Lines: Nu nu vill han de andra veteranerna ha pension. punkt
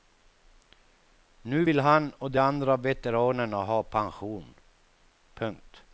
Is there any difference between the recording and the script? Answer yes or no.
yes